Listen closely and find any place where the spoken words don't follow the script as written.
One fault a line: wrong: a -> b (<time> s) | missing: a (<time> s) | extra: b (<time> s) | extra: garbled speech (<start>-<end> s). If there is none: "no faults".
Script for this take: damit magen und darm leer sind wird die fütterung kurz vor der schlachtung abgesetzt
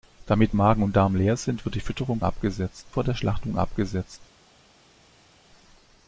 wrong: kurz -> abgesetzt (2.2 s)